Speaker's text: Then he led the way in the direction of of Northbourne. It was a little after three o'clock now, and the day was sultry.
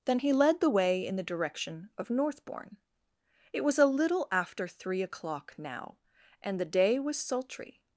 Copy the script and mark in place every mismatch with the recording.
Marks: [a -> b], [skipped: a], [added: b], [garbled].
Then he led the way in the direction of [skipped: of] Northbourne. It was a little after three o'clock now, and the day was sultry.